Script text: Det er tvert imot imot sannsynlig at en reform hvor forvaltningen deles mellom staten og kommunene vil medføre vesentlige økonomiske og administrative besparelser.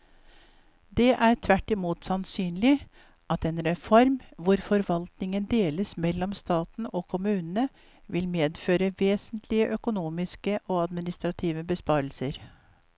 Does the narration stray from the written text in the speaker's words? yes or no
yes